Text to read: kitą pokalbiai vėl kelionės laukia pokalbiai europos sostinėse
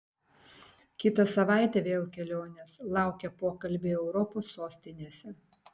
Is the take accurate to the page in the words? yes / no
no